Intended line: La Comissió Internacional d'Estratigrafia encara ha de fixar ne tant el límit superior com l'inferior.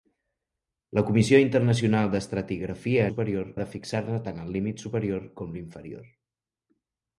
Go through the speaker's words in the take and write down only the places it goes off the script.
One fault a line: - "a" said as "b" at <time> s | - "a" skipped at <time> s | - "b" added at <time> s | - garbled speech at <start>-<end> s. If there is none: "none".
- "encara" said as "superior" at 3.1 s